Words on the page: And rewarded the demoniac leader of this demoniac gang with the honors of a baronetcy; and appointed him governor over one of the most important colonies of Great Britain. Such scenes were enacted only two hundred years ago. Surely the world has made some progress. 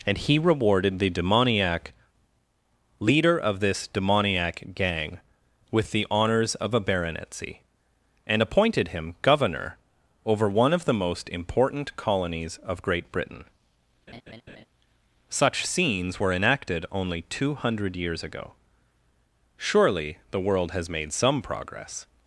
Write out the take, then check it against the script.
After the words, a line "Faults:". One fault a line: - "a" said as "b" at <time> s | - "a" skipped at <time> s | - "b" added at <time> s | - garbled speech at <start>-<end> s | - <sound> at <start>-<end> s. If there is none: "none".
And he rewarded the demoniac leader of this demoniac gang with the honors of a baronetcy; and appointed him governor over one of the most important colonies of Great Britain. Such scenes were enacted only two hundred years ago. Surely the world has made some progress.
Faults:
- "he" added at 0.2 s
- laugh at 14.1-14.6 s